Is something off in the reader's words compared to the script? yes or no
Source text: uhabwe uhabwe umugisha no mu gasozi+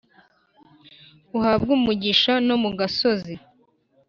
yes